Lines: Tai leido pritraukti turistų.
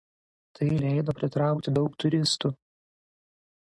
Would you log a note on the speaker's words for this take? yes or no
yes